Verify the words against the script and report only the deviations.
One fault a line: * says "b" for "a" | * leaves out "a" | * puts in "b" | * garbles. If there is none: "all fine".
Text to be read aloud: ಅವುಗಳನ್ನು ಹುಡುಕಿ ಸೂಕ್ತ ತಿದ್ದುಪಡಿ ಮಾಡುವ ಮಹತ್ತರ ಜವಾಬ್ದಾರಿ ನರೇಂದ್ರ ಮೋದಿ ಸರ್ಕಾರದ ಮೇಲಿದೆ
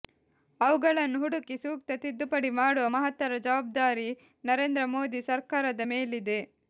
all fine